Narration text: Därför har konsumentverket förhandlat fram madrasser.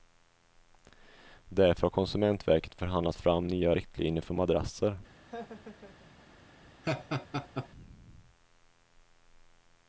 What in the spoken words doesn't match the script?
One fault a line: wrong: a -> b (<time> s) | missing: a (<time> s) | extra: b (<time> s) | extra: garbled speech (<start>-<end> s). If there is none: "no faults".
extra: nya riktlinjer för (3.5 s)